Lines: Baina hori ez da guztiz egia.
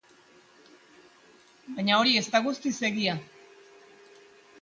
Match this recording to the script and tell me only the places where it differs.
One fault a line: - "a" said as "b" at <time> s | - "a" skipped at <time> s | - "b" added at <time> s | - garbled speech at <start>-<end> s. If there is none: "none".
none